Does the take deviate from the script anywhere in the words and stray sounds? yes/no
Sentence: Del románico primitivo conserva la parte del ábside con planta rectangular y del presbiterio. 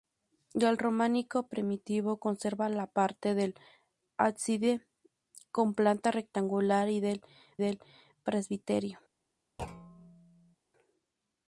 yes